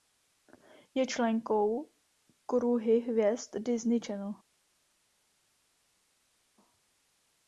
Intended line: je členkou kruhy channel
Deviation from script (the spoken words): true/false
true